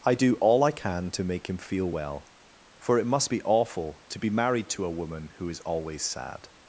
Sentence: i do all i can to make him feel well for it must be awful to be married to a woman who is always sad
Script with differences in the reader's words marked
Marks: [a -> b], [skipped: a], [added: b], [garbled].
i do all i can to make him feel well for it must be awful to be married to a woman who is always sad